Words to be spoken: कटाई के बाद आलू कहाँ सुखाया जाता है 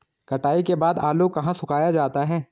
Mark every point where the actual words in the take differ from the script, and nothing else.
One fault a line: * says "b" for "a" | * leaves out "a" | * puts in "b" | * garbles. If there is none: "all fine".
all fine